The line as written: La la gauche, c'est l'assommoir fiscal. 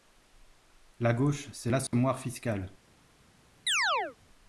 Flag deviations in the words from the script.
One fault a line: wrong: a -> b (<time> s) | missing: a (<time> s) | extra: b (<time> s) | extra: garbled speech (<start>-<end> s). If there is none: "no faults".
missing: la (1.1 s)